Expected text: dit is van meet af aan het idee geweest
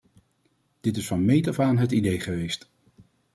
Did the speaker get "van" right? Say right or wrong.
right